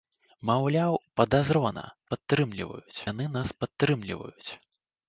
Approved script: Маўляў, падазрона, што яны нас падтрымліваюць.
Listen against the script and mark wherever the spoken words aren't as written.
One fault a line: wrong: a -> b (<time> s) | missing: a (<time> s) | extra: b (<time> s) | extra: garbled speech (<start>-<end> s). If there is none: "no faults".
wrong: што -> падтрымліваюць (2.1 s)